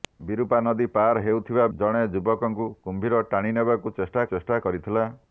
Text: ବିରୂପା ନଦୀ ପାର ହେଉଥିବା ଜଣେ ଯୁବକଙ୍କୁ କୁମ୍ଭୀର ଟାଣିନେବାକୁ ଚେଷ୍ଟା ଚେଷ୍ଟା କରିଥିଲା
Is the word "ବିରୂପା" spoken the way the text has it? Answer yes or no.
yes